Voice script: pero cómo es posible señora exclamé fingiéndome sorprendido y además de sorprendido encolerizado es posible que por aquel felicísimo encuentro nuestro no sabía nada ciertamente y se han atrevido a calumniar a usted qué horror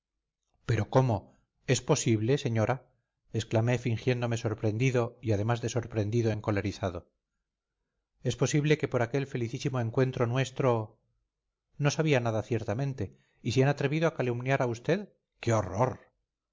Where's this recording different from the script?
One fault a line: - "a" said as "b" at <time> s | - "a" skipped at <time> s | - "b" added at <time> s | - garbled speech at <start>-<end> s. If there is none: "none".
none